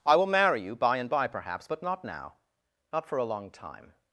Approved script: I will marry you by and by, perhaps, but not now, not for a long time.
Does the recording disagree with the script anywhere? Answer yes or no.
no